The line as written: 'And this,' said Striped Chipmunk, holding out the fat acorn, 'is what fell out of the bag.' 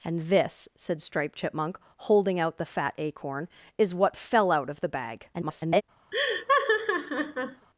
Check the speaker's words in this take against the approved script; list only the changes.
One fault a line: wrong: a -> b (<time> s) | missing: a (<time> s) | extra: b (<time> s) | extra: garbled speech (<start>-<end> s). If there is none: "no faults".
extra: garbled speech (5.3-5.8 s)